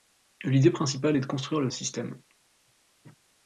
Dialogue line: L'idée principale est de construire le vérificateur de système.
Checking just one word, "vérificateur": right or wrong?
wrong